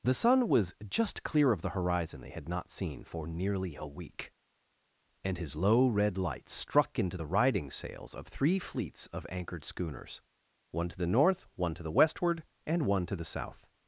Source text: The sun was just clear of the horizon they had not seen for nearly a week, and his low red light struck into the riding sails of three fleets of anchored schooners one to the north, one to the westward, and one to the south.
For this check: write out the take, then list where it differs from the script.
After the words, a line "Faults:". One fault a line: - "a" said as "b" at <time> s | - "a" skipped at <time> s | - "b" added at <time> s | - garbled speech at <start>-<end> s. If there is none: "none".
The sun was just clear of the horizon they had not seen for nearly a week, and his low red light struck into the riding sails of three fleets of anchored schooners one to the north, one to the westward, and one to the south.
Faults:
none